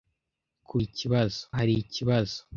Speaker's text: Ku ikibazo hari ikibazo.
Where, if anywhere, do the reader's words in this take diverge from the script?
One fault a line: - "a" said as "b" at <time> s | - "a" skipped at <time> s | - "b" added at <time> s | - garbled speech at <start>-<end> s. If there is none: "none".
none